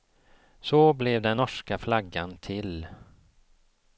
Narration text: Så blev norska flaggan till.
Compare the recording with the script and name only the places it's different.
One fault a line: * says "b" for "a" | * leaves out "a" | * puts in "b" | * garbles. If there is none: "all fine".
* puts in "den"